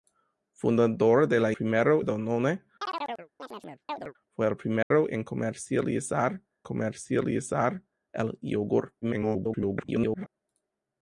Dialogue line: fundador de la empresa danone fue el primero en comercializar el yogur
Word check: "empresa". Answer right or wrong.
wrong